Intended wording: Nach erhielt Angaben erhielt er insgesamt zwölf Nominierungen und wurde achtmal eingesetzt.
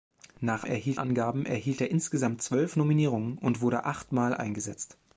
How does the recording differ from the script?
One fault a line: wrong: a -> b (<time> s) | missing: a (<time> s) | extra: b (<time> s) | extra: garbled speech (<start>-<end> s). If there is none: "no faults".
no faults